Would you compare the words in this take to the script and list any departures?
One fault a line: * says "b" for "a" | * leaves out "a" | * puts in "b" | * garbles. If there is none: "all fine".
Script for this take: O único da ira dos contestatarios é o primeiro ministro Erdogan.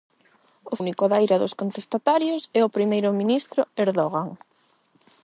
all fine